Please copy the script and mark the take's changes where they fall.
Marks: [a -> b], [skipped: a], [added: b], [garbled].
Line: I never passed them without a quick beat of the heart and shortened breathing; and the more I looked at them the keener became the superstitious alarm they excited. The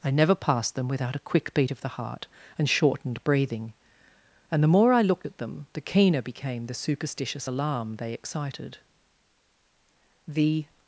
I never passed them without a quick beat of the heart and shortened breathing; and the more I looked at them the keener became the superstitious alarm they excited. The